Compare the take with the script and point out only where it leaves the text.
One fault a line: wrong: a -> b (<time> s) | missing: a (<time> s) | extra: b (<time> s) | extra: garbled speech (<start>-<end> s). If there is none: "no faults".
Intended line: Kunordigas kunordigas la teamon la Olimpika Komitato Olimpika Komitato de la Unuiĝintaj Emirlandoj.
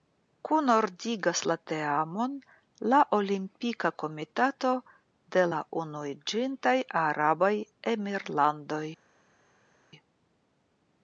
missing: kunordigas (1.4 s)
missing: Olimpika Komitato (4.7 s)
extra: Arabaj (7.1 s)